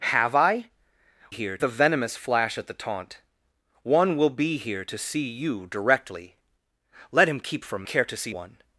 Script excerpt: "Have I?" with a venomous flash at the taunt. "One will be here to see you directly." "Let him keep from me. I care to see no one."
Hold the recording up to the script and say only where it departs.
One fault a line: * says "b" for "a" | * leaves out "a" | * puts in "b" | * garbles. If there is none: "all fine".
* says "here" for "with"
* leaves out "me I"
* leaves out "no"